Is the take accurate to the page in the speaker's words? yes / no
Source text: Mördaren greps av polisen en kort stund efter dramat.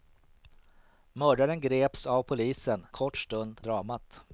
no